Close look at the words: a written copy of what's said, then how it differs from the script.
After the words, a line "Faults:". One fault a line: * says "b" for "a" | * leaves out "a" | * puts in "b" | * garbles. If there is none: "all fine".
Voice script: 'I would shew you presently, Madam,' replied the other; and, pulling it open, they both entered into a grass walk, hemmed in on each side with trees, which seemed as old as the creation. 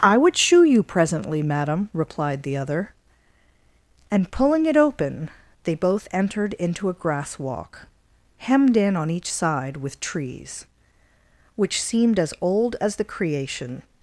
'I would shew you presently, Madam,' replied the other; and, pulling it open, they both entered into a grass walk, hemmed in on each side with trees, which seemed as old as the creation.
Faults:
all fine